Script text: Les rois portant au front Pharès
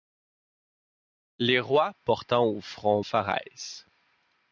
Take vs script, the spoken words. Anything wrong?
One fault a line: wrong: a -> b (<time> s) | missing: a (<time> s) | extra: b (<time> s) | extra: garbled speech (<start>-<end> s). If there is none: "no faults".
no faults